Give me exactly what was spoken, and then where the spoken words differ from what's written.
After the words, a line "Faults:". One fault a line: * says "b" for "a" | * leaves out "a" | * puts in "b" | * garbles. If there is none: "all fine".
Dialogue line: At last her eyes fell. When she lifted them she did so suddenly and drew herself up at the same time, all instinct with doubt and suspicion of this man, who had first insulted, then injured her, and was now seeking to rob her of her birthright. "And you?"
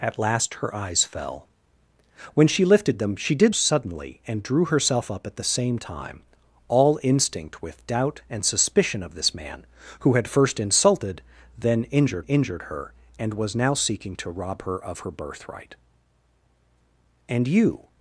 At last her eyes fell. When she lifted them she did suddenly and drew herself up at the same time, all instinct with doubt and suspicion of this man, who had first insulted, then injured injured her, and was now seeking to rob her of her birthright. "And you?"
Faults:
* leaves out "so"
* puts in "injured"